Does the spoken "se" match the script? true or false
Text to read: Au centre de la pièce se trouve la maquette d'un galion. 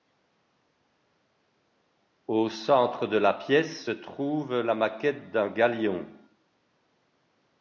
true